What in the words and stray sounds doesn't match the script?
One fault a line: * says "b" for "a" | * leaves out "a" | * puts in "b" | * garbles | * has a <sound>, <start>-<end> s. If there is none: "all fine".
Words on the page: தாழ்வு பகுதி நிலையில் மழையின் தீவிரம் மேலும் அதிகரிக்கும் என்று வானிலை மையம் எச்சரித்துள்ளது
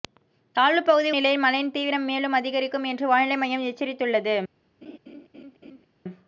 * has a laugh, 4.8-5.8 s